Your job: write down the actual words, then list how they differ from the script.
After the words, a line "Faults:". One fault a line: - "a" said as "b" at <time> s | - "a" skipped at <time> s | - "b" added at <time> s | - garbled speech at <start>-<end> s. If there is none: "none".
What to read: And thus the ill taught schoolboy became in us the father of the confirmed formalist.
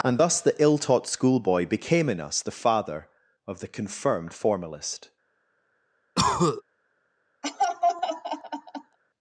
And thus the ill taught schoolboy became in us the father of the confirmed formalist.
Faults:
none